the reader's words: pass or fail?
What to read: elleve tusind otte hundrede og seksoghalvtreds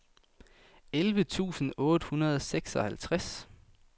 pass